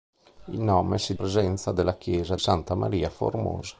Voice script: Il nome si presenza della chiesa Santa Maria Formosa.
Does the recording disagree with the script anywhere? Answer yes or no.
no